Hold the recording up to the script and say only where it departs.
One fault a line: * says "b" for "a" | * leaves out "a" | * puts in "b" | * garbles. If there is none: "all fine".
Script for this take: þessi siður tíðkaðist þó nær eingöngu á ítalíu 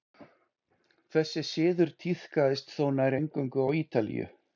all fine